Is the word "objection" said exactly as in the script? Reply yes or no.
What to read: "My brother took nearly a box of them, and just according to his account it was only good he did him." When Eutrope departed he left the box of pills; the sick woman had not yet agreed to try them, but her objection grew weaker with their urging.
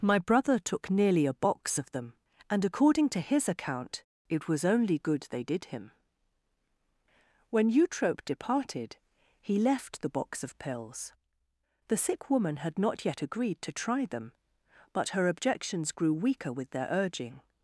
no